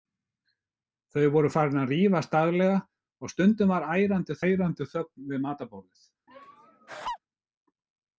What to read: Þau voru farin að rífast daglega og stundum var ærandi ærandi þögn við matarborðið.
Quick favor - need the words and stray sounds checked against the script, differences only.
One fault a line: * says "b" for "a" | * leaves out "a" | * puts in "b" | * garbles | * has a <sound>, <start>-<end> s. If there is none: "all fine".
* has a laugh, 6.3-7.2 s